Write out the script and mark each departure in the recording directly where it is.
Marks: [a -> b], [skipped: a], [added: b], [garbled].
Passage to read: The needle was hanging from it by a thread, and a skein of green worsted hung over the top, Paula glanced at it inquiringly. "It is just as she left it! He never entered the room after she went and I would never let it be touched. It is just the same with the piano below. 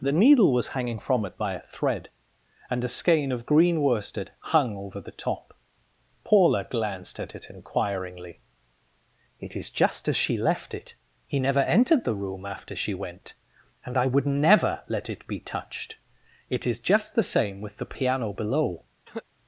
The needle was hanging from it by a thread, and a skein of green worsted hung over the top, Paula glanced at it inquiringly. "It is just as she left it! He never entered the room after she went and I would never let it be touched. It is just the same with the piano below.